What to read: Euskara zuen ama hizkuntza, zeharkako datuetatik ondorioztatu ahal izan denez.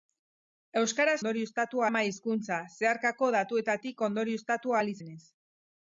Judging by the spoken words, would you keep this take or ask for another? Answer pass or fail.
fail